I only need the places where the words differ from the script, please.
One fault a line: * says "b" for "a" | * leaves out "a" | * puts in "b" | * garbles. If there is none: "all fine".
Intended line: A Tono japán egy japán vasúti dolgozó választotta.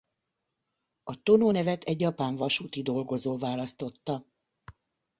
* says "nevet" for "japán"